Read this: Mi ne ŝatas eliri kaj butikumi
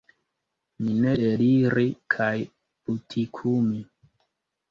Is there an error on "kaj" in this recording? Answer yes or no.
no